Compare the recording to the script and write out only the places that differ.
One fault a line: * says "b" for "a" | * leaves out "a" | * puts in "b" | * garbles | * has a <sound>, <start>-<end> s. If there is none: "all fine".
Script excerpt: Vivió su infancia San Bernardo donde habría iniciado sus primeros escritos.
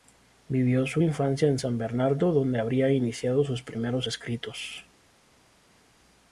* puts in "en"